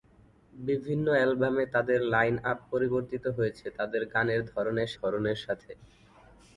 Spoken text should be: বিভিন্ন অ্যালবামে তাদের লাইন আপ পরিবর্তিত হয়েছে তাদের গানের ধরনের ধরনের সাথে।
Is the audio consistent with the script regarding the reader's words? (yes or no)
yes